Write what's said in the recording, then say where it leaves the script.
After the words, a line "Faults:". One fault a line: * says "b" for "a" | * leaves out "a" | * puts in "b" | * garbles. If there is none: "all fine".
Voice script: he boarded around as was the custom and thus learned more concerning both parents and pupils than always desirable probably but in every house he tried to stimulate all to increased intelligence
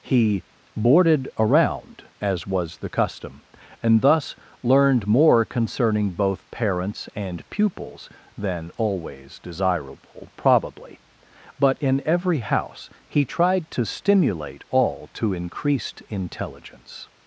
he boarded around as was the custom and thus learned more concerning both parents and pupils than always desirable probably but in every house he tried to stimulate all to increased intelligence
Faults:
all fine